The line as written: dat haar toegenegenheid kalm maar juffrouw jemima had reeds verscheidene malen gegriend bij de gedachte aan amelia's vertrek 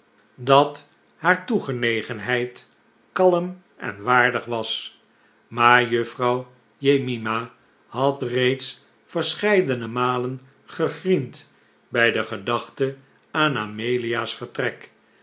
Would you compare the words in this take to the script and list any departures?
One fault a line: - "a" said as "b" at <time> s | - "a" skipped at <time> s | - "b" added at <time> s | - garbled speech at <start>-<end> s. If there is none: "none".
- "en waardig was" added at 3.8 s